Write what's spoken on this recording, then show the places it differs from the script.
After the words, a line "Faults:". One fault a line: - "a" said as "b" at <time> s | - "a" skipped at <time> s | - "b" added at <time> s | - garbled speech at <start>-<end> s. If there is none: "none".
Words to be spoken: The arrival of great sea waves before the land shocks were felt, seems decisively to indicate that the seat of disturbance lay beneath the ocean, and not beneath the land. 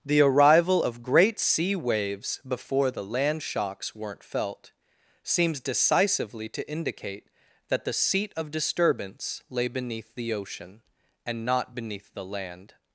The arrival of great sea waves before the land shocks weren't felt, seems decisively to indicate that the seat of disturbance lay beneath the ocean, and not beneath the land.
Faults:
- "were" said as "weren't" at 3.9 s